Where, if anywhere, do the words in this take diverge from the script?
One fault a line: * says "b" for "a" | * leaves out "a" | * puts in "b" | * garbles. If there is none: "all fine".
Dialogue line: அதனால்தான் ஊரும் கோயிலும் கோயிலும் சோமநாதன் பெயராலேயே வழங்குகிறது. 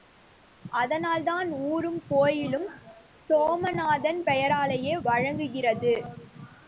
* leaves out "கோயிலும்"